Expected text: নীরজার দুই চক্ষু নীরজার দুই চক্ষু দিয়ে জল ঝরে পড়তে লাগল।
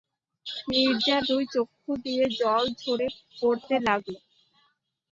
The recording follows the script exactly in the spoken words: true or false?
false